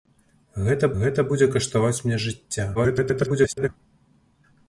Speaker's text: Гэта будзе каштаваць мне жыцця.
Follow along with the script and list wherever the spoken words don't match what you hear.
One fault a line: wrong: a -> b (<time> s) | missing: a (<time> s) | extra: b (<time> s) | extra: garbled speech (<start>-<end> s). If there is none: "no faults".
extra: гэта (1.0 s)
extra: garbled speech (2.7-3.7 s)